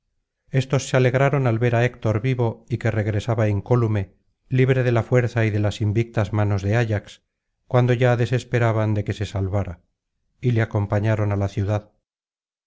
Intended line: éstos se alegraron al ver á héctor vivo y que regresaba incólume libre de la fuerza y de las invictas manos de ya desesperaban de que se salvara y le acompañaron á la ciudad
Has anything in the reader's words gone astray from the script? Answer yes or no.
yes